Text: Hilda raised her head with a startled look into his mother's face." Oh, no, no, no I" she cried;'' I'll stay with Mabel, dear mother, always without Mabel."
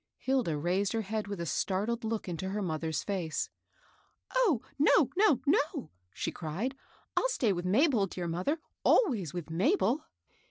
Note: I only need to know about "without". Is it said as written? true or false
false